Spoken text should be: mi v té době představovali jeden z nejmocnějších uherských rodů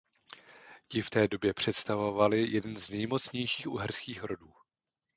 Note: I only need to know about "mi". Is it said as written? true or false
false